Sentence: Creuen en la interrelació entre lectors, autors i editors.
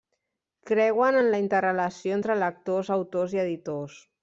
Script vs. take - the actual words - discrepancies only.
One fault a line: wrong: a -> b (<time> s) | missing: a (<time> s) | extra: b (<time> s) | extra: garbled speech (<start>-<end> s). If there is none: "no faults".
no faults